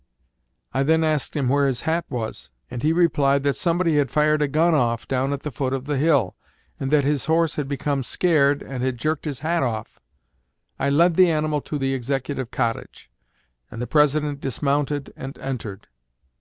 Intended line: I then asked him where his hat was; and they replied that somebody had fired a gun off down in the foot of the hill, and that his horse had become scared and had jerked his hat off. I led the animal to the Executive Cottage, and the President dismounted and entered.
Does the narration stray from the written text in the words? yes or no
yes